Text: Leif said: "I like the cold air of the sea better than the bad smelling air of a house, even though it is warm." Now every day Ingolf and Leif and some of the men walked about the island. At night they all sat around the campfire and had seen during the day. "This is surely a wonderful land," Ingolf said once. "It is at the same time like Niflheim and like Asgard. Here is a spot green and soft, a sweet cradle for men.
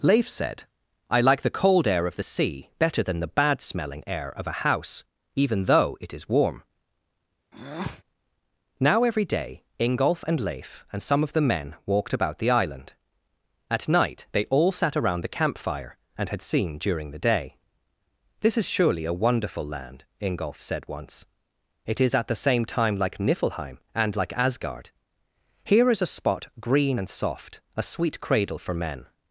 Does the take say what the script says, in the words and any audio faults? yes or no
no